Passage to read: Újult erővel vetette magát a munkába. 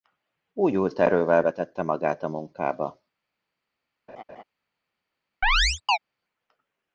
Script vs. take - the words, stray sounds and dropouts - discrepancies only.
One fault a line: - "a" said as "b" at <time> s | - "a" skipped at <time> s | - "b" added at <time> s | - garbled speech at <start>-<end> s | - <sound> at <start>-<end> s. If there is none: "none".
- laugh at 4.1-4.4 s
- chirp at 5.4-6.0 s